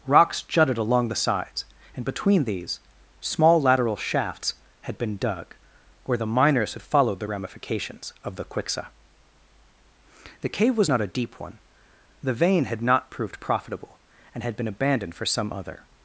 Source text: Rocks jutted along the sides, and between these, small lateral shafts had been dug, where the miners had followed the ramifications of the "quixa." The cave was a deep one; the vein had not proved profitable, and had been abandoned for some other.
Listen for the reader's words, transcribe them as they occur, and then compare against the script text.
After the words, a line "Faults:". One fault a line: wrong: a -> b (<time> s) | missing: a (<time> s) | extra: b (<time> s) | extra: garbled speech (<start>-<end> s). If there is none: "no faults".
Rocks jutted along the sides, and between these, small lateral shafts had been dug, where the miners had followed the ramifications of the "quixa." The cave was not a deep one; the vein had not proved profitable, and had been abandoned for some other.
Faults:
extra: not (10.9 s)